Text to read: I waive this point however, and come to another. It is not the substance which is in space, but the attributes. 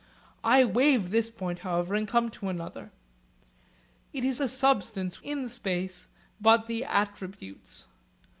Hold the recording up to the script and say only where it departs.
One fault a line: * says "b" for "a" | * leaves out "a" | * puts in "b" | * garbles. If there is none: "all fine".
* leaves out "not"
* leaves out "which is"